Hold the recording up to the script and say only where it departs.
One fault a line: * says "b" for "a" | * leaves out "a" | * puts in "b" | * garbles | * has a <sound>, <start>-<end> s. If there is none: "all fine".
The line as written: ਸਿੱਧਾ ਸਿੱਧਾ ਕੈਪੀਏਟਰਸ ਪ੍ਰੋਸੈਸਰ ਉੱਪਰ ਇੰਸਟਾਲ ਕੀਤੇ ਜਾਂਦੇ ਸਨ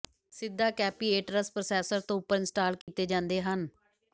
* leaves out "ਸਿੱਧਾ"
* puts in "ਤੋਂ"
* has a dropout, 2.8-2.9 s
* says "ਹਨ" for "ਸਨ"